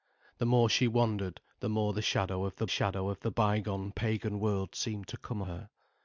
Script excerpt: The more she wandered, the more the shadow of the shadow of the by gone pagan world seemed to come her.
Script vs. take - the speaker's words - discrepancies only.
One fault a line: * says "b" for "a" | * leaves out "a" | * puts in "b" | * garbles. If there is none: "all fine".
all fine